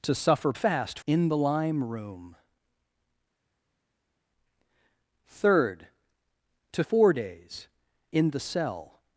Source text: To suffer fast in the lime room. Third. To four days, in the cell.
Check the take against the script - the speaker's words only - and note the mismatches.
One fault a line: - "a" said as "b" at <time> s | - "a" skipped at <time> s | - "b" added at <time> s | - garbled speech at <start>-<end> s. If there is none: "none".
none